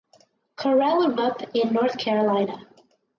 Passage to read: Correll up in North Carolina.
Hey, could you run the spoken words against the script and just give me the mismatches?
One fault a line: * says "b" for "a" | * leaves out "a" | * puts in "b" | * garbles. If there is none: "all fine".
all fine